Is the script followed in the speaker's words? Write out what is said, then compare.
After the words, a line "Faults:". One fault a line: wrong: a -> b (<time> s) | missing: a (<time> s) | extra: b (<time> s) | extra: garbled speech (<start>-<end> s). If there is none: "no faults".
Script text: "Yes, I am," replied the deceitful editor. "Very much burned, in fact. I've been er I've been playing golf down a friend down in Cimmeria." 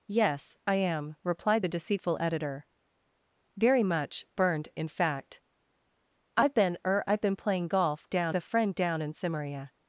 "Yes, I am," replied the deceitful editor. "Very much burned, in fact. I've been er I've been playing golf down a friend down in Cimmeria."
Faults:
no faults